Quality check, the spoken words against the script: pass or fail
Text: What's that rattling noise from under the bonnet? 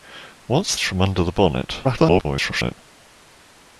fail